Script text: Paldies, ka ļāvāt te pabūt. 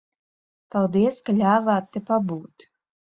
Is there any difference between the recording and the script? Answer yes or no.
no